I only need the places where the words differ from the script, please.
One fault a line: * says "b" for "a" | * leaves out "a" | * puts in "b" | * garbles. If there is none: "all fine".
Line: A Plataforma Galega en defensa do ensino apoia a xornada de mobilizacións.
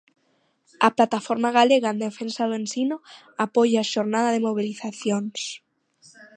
all fine